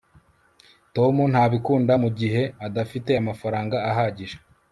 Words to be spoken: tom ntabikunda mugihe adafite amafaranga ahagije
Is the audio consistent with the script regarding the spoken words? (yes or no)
yes